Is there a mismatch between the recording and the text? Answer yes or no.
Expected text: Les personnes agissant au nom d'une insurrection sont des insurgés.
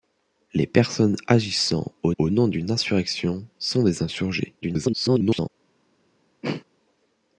yes